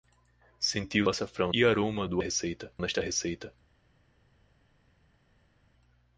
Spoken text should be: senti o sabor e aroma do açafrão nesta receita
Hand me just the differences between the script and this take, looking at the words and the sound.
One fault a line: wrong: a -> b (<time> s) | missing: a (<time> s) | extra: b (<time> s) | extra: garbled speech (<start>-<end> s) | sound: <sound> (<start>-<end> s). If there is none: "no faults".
wrong: sabor -> açafrão (1.1 s)
wrong: açafrão -> receita (2.2 s)